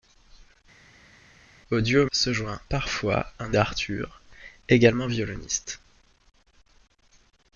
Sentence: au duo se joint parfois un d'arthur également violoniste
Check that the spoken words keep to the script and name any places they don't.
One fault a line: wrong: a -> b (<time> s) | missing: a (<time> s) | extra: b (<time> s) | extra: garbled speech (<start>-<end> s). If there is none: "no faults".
no faults